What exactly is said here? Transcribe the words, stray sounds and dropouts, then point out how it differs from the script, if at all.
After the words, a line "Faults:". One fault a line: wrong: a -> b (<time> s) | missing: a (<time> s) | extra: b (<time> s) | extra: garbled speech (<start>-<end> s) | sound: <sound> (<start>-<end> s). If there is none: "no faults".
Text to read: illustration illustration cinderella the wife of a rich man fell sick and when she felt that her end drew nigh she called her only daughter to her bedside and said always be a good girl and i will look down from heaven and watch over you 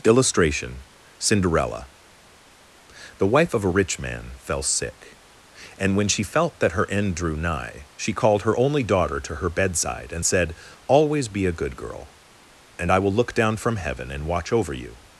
illustration cinderella the wife of a rich man fell sick and when she felt that her end drew nigh she called her only daughter to her bedside and said always be a good girl and i will look down from heaven and watch over you
Faults:
missing: illustration (0.8 s)